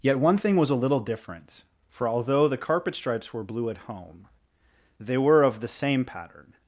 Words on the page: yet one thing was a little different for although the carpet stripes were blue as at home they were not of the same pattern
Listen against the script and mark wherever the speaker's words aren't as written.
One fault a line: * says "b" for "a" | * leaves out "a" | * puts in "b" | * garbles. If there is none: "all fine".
* leaves out "as"
* leaves out "not"